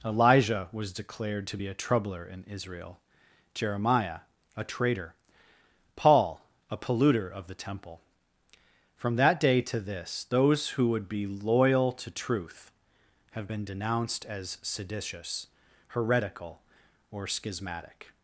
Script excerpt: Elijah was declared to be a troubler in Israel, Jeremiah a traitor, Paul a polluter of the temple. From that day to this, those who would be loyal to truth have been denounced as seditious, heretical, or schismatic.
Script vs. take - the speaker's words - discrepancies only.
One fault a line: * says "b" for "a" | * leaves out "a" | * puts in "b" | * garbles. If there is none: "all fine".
all fine